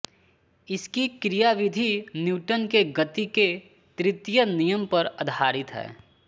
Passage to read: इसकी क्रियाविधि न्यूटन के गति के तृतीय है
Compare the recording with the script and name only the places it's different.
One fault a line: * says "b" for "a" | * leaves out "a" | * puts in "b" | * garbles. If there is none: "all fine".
* puts in "नियम पर आधारित"